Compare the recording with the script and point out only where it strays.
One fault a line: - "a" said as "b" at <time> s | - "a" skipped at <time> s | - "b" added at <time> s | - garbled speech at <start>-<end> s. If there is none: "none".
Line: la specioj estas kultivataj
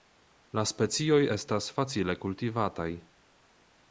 - "facile" added at 1.8 s